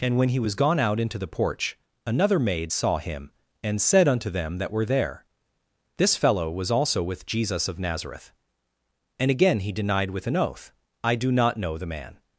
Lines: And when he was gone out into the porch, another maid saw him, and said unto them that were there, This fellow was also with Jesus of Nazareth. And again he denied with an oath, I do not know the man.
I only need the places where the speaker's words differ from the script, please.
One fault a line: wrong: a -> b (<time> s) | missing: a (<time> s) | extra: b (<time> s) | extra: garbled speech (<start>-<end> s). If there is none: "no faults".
no faults